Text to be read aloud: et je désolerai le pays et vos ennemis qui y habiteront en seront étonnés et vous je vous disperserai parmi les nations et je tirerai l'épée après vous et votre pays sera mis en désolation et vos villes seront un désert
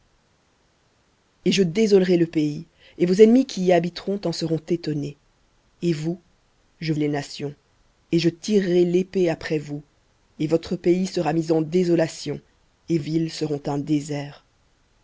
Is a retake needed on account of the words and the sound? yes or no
yes